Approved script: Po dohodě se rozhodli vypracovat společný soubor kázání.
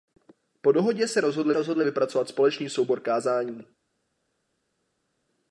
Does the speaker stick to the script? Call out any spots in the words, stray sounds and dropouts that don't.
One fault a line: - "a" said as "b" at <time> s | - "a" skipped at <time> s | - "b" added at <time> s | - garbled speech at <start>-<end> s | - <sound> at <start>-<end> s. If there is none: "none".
- "rozhodli" added at 1.5 s